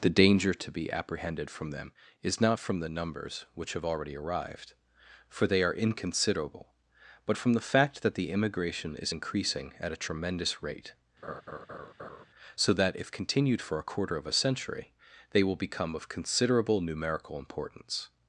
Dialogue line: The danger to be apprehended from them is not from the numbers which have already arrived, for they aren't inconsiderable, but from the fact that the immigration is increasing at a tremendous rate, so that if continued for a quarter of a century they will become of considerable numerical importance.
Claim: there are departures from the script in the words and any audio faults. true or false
true